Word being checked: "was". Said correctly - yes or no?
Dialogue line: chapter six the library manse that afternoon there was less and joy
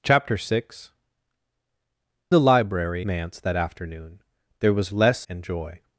yes